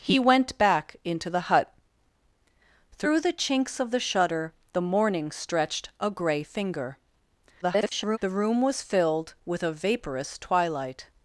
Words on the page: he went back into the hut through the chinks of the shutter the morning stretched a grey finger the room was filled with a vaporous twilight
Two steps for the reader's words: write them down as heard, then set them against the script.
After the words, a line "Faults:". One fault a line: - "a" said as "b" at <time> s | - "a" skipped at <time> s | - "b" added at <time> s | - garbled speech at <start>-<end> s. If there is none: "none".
he went back into the hut through the chinks of the shutter the morning stretched a grey finger [garbled] the room was filled with a vaporous twilight
Faults:
- garbled speech at 7.6-8.2 s